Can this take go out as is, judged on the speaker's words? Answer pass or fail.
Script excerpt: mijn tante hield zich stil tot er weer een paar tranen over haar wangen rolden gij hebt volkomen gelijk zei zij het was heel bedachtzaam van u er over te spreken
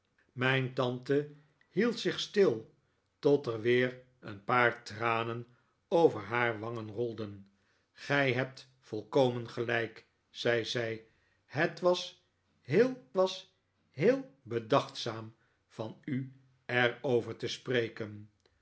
fail